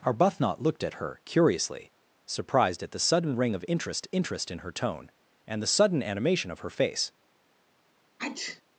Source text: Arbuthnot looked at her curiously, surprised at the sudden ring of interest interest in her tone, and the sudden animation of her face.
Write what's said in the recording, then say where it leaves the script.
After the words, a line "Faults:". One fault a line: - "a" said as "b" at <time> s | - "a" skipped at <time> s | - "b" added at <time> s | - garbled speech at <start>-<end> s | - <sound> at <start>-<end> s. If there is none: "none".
Arbuthnot looked at her curiously, surprised at the sudden ring of interest interest in her tone, and the sudden animation of her face.
Faults:
- sneeze at 8.2-8.6 s